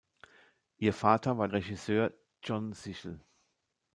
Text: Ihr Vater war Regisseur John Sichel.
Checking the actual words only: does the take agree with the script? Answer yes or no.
yes